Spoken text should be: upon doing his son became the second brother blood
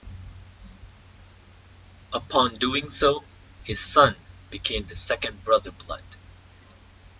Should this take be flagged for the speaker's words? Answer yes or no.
yes